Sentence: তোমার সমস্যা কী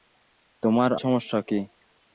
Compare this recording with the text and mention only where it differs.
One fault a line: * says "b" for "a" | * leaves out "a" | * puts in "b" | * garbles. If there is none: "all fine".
all fine